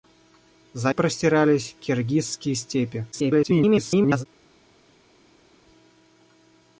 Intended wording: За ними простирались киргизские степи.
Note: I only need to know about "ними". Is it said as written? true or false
false